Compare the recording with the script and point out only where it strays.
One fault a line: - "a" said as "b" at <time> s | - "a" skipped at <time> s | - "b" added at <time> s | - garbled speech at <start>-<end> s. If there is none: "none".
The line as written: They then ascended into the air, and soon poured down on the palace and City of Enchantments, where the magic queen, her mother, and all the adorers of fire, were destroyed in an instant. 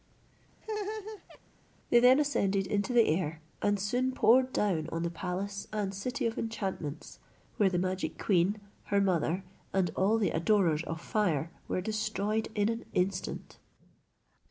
none